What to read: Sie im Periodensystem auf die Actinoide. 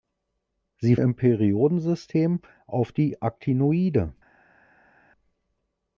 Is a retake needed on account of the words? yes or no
no